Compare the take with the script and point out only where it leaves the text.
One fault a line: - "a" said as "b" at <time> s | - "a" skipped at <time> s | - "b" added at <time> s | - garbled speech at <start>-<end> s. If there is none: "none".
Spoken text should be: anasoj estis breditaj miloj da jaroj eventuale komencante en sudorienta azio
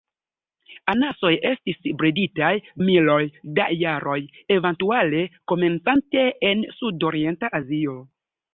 none